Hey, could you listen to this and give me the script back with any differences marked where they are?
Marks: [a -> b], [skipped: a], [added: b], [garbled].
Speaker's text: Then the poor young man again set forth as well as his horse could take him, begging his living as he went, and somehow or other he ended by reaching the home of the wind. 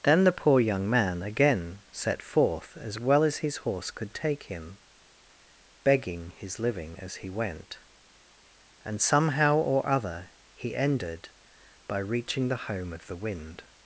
Then the poor young man again set forth as well as his horse could take him, begging his living as he went, and somehow or other he ended by reaching the home of the wind.